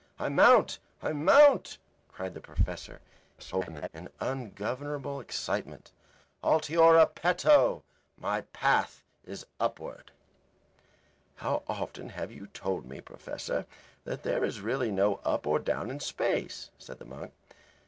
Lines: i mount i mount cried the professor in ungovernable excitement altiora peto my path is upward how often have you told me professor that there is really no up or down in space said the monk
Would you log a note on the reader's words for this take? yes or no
yes